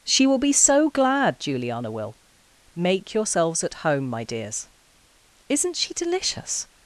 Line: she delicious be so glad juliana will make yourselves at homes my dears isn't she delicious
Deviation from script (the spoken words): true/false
true